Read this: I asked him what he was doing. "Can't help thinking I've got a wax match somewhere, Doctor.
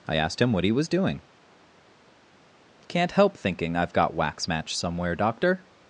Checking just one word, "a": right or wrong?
wrong